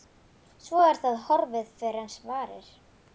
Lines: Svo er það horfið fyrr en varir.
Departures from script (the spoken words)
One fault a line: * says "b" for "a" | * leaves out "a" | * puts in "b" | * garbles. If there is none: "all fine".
all fine